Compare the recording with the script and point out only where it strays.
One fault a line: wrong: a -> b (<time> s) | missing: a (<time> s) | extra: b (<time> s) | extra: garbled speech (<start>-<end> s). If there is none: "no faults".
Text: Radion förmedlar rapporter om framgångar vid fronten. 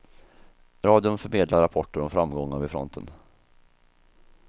no faults